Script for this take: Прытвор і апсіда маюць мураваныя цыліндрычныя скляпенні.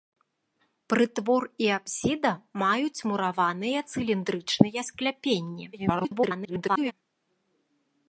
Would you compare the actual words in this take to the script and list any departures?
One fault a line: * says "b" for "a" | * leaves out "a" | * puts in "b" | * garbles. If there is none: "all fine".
* garbles